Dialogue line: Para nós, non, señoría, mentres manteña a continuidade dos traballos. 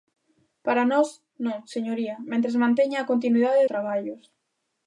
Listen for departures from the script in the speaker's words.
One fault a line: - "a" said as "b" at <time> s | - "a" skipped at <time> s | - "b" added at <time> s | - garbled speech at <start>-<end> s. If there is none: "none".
- "dos" skipped at 3.7 s